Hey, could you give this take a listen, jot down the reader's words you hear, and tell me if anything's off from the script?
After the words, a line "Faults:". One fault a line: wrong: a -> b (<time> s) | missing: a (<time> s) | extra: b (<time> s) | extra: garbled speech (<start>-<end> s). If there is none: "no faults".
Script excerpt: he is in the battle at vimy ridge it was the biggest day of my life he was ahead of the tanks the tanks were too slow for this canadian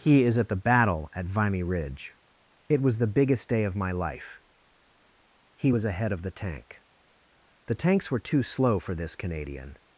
he is at the battle at vimy ridge it was the biggest day of my life he was ahead of the tank the tanks were too slow for this canadian
Faults:
wrong: in -> at (0.4 s)
wrong: tanks -> tank (6.3 s)